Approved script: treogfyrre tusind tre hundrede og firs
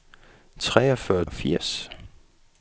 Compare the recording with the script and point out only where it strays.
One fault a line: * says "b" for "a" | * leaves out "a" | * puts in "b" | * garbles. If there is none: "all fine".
* leaves out "tusind tre hundrede"